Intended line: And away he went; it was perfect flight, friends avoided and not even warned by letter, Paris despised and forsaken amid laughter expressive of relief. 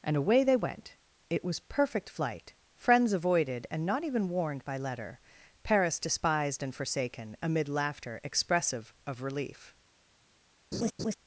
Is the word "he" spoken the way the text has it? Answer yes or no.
no